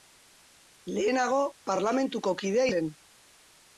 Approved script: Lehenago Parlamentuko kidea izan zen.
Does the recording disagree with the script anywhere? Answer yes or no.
yes